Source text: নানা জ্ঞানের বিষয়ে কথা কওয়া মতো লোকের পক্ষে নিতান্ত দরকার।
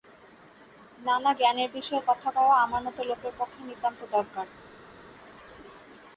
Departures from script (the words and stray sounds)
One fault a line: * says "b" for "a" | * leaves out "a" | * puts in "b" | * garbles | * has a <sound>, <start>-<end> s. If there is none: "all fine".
* puts in "আমার"